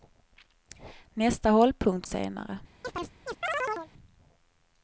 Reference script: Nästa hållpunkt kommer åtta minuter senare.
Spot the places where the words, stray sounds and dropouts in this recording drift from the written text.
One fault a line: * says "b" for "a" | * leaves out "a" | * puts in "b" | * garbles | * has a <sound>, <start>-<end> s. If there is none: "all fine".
* leaves out "kommer åtta minuter"
* has a chirp, 2.8-3.9 s